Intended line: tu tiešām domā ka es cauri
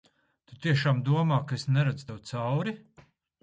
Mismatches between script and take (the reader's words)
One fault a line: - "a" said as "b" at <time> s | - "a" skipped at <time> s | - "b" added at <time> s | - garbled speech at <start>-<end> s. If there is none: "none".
- "neredzu tev" added at 1.8 s